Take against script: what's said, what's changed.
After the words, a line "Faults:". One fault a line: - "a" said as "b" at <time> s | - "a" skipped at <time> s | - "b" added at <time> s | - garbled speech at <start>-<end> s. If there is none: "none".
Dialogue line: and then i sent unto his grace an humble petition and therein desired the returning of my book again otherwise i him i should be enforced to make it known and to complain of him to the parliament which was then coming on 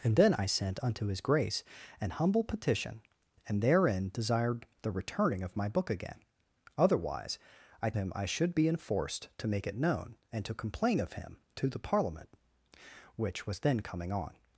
and then i sent unto his grace an humble petition and therein desired the returning of my book again otherwise i him i should be enforced to make it known and to complain of him to the parliament which was then coming on
Faults:
none